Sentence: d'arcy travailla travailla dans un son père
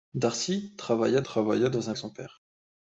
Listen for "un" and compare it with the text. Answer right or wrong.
right